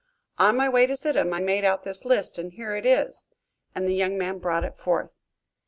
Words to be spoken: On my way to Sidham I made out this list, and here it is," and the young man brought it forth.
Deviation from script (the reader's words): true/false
false